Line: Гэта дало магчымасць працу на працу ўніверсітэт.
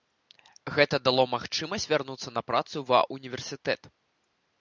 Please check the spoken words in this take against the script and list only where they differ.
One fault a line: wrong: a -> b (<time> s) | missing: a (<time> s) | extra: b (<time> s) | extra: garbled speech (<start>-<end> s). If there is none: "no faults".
wrong: працу -> вярнуцца (1.9 s)
extra: ва (2.9 s)